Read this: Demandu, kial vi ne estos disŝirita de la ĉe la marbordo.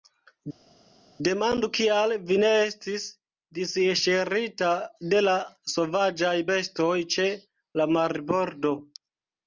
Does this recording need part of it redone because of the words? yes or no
yes